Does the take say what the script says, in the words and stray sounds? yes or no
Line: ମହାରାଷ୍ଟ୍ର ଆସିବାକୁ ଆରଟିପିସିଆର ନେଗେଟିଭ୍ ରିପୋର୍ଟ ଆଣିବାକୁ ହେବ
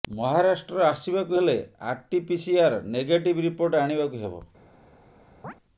no